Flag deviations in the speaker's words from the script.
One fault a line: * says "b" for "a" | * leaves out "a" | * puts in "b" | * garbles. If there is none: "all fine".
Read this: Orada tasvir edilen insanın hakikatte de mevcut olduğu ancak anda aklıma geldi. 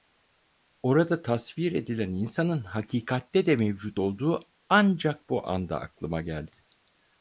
* puts in "bu"